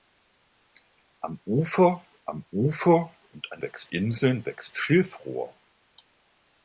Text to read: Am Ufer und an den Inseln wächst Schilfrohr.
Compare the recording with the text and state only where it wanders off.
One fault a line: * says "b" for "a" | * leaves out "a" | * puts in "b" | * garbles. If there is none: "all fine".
* puts in "am Ufer"
* says "wächst" for "den"